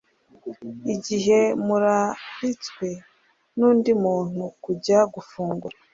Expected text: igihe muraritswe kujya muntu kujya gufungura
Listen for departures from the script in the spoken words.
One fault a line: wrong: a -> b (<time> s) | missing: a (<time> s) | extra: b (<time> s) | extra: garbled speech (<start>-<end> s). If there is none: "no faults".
wrong: kujya -> nundi (3.6 s)